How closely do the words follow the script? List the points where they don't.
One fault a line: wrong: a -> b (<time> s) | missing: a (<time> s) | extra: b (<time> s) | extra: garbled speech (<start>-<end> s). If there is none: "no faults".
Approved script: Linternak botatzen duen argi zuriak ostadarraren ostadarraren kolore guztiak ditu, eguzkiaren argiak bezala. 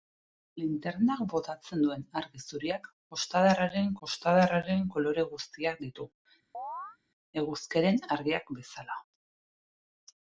no faults